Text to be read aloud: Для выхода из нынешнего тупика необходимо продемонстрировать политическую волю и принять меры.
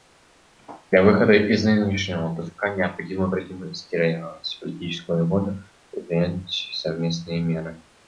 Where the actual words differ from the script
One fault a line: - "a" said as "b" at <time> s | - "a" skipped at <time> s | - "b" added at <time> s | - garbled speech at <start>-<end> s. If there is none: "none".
- "совместные" added at 6.7 s